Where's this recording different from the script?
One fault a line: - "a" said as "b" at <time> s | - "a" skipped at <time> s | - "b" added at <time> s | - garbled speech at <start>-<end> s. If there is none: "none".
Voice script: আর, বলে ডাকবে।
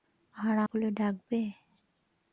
none